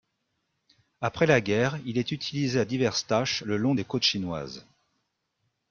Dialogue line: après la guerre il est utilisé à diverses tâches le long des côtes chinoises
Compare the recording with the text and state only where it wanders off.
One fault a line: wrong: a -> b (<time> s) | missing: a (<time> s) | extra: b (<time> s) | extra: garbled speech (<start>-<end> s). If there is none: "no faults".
no faults